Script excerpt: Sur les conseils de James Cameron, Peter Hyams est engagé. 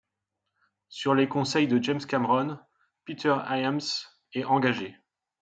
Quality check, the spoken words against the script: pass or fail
pass